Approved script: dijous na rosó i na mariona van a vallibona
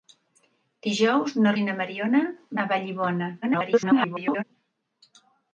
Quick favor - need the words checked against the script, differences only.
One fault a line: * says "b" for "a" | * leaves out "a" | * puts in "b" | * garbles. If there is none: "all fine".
* leaves out "rosó"
* leaves out "van"
* garbles